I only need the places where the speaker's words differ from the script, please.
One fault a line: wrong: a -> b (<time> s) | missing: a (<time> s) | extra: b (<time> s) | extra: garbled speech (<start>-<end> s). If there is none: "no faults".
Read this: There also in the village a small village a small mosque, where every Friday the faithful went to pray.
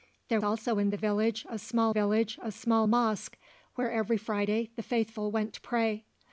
no faults